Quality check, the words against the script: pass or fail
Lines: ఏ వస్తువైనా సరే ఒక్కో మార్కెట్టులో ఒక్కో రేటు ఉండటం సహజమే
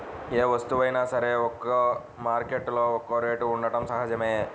pass